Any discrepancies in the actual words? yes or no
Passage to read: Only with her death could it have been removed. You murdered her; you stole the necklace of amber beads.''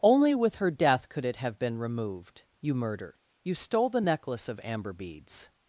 yes